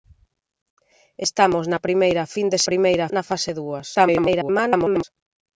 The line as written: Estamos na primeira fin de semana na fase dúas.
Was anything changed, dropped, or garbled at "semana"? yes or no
yes